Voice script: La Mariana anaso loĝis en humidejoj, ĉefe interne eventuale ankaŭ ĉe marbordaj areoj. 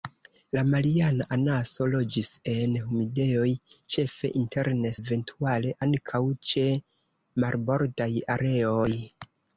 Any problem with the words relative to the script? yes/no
no